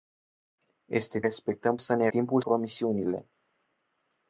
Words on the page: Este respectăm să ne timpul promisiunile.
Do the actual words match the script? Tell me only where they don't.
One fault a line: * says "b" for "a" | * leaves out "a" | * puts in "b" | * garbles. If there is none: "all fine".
all fine